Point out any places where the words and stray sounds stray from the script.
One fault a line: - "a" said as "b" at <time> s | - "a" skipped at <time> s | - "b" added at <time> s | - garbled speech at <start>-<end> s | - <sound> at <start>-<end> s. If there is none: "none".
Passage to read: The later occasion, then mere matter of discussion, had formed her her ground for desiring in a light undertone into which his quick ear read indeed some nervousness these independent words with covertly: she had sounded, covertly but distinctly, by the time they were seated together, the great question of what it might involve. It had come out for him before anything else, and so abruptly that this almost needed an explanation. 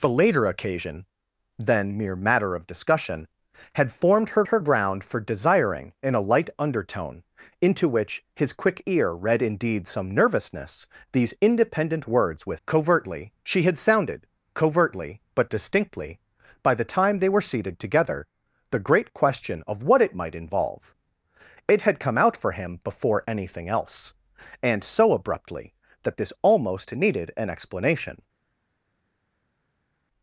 none